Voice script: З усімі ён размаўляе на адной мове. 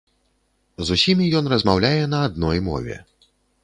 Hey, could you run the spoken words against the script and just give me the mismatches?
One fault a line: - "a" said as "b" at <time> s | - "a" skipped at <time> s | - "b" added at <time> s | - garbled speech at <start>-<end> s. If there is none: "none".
none